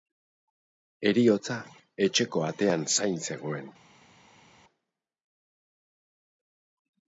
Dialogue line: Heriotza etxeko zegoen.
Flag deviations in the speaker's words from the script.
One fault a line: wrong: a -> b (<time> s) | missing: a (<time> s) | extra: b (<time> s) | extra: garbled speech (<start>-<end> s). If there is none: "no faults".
extra: atean zain (2.5 s)